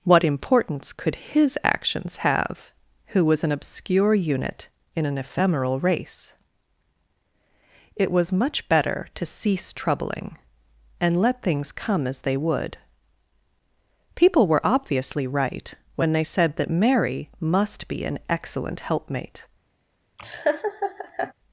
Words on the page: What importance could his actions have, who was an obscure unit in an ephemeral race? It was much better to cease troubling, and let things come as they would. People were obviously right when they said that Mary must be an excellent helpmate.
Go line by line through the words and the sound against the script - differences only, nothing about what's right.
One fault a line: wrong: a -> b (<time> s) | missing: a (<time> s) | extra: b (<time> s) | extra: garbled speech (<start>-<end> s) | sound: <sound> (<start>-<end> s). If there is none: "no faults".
sound: laugh (20.2-21.3 s)